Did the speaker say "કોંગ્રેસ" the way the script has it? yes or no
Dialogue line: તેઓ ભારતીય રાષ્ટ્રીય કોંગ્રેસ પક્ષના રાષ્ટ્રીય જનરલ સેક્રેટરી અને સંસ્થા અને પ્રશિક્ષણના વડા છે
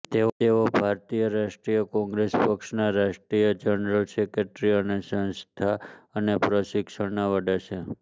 yes